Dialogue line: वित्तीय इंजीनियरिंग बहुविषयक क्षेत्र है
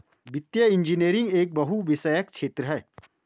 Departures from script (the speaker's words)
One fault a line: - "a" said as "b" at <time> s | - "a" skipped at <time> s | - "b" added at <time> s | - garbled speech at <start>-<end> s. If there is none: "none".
- "एक" added at 1.4 s